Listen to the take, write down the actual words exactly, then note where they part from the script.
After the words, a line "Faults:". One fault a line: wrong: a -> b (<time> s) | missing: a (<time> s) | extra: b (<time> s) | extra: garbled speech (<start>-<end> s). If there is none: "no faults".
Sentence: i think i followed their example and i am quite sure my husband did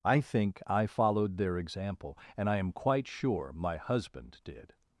i think i followed their example and i am quite sure my husband did
Faults:
no faults